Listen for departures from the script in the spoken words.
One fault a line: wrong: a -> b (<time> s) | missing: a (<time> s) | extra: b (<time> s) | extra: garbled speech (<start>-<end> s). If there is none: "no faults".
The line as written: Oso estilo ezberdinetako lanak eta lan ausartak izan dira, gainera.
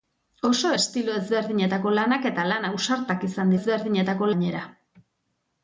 wrong: dira -> ezberdinetako (3.6 s)